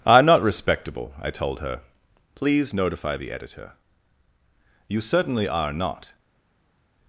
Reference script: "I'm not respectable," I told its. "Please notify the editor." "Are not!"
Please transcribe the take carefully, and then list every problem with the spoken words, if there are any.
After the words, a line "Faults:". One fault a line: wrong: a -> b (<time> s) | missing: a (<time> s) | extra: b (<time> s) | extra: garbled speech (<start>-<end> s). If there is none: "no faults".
"I'm not respectable," I told her. "Please notify the editor." "You certainly are not!"
Faults:
wrong: its -> her (1.6 s)
extra: You certainly (4.9 s)